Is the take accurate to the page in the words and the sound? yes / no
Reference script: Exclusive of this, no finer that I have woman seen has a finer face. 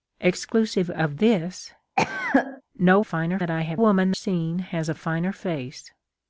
no